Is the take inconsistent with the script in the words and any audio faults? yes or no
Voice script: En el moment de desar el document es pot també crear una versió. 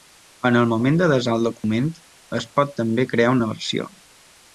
yes